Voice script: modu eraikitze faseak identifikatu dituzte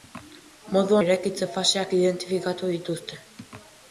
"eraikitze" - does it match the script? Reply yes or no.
yes